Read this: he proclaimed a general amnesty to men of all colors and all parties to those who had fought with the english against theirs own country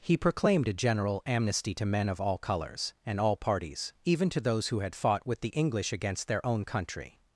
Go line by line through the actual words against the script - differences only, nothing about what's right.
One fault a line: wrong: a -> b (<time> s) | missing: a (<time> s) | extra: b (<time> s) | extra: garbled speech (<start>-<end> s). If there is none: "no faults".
extra: even (4.0 s)
wrong: theirs -> their (6.3 s)